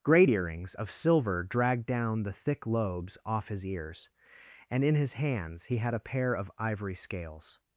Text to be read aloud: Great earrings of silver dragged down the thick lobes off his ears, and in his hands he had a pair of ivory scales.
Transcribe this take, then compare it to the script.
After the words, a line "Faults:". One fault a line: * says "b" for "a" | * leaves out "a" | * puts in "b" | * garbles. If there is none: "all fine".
Great earrings of silver dragged down the thick lobes off his ears, and in his hands he had a pair of ivory scales.
Faults:
all fine